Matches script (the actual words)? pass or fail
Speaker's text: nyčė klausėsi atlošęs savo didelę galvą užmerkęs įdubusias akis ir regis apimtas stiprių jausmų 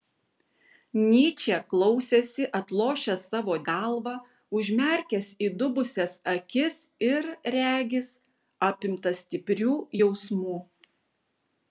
fail